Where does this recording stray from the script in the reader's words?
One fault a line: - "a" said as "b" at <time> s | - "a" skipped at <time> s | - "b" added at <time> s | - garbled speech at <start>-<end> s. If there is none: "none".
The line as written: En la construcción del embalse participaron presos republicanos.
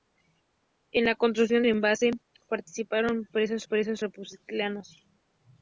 - "del" skipped at 1.6 s
- "presos" added at 3.7 s